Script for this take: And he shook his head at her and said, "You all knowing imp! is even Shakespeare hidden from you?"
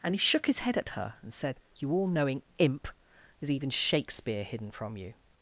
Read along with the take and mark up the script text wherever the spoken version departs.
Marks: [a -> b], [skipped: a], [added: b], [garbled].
And he shook his head at her and said, "You all knowing imp! is even Shakespeare hidden from you?"